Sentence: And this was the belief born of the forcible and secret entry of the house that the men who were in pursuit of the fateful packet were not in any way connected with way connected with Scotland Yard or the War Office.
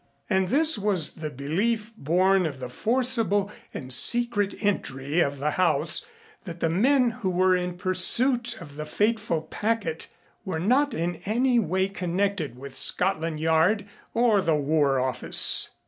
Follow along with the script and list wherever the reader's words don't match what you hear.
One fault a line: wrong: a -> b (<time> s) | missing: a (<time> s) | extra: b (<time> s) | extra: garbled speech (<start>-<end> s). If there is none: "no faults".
missing: way connected with (12.8 s)